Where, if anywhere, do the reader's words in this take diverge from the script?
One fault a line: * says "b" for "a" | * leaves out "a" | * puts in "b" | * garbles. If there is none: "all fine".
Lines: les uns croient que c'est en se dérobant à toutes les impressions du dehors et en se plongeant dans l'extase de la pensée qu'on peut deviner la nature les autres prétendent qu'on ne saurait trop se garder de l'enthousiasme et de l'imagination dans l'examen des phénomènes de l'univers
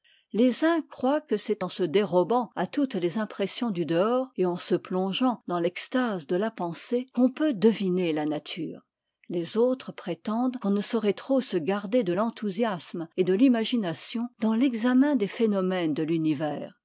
all fine